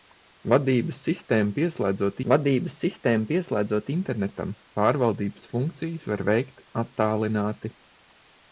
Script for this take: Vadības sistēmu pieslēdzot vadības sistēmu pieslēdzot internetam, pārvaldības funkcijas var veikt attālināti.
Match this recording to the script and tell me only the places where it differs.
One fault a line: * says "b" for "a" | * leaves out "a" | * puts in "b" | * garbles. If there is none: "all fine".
all fine